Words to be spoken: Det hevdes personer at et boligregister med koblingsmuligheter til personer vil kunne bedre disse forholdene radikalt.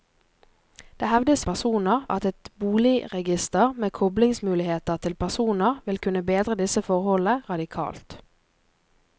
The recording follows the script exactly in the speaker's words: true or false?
true